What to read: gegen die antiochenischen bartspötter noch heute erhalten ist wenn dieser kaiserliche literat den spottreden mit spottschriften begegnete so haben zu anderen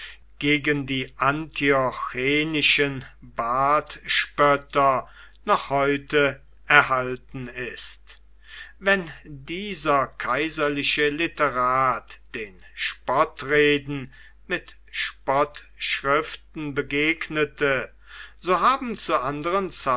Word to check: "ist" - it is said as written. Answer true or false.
true